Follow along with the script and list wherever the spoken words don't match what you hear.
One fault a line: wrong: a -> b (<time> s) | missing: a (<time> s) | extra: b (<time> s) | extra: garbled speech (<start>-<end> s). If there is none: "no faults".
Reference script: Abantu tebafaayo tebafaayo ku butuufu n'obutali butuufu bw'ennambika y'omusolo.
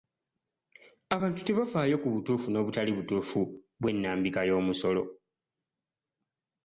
missing: tebafaayo (1.9 s)